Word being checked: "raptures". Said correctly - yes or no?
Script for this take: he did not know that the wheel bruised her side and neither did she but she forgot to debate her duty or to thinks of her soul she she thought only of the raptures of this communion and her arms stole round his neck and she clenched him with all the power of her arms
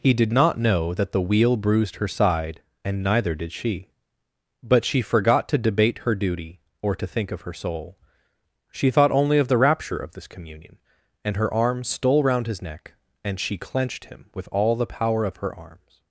no